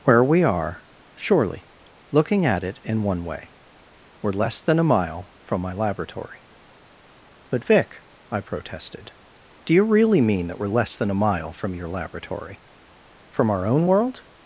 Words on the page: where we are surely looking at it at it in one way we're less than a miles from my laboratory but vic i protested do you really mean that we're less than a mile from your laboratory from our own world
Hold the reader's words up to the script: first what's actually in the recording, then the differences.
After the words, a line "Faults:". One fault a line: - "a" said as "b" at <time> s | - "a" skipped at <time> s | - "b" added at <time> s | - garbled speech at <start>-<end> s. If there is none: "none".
where we are surely looking at it in one way we're less than a mile from my laboratory but vic i protested do you really mean that we're less than a mile from your laboratory from our own world
Faults:
- "at it" skipped at 2.8 s
- "miles" said as "mile" at 4.8 s